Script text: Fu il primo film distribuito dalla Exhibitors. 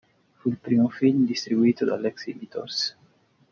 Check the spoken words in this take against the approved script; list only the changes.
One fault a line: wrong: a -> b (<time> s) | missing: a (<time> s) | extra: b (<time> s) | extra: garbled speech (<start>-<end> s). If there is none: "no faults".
no faults